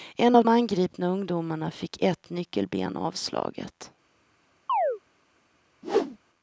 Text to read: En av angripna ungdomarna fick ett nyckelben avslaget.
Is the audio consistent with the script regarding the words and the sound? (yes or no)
no